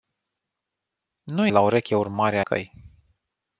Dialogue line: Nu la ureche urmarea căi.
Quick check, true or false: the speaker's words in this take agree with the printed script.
true